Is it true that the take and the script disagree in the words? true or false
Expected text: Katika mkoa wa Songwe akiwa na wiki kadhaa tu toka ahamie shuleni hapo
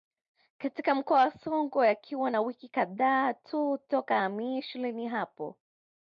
false